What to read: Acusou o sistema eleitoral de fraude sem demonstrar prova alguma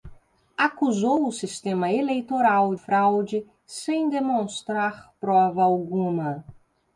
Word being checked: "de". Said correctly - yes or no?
no